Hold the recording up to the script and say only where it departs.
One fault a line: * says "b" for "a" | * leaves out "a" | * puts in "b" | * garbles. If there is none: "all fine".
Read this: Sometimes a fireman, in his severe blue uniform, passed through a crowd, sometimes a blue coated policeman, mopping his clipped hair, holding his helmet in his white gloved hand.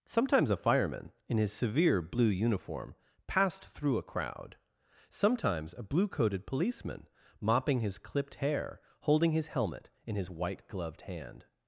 all fine